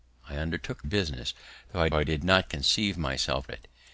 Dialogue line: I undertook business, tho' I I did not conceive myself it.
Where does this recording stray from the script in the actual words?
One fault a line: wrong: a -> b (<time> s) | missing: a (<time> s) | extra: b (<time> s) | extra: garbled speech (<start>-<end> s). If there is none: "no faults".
no faults